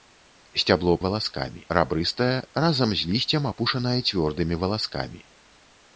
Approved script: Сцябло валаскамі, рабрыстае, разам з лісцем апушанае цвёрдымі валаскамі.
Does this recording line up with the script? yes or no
yes